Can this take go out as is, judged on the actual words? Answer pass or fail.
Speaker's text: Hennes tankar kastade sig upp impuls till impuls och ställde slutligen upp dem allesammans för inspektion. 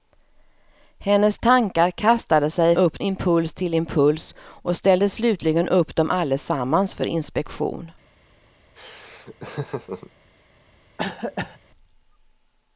pass